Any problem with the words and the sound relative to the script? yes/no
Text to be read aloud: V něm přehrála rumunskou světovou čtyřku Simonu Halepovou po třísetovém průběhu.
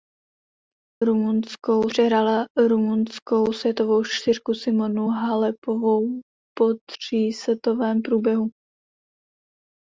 yes